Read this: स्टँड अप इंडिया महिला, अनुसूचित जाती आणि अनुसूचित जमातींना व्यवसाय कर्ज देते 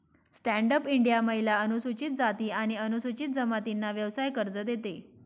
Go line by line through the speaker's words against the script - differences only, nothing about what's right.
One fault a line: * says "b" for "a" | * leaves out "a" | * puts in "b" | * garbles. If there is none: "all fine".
all fine